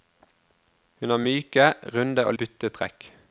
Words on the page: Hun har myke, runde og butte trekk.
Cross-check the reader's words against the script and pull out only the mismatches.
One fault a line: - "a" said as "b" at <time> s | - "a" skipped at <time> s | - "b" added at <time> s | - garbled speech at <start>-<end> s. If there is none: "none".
none